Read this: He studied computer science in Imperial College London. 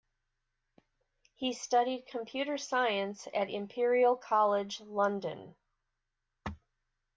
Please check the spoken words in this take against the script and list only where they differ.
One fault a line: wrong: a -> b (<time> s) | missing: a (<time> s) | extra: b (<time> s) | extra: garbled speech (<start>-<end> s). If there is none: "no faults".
wrong: in -> at (3.4 s)